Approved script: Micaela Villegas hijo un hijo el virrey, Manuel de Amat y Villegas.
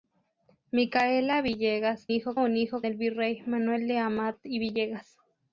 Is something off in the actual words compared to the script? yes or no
no